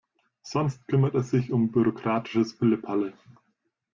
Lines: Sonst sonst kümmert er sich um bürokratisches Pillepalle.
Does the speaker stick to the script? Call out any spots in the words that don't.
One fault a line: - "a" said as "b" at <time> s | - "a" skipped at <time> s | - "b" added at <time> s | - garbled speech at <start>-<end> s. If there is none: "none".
- "sonst" skipped at 0.9 s